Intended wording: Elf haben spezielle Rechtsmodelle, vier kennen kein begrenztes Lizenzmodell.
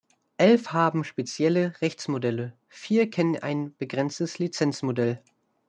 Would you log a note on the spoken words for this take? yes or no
yes